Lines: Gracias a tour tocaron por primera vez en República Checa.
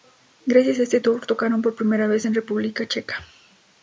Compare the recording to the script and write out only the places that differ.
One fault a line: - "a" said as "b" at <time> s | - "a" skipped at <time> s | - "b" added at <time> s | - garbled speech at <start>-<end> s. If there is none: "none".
- "este" added at 0.8 s